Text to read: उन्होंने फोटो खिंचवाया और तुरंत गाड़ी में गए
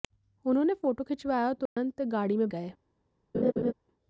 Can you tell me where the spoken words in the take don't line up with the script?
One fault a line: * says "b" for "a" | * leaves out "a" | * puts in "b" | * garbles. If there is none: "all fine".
all fine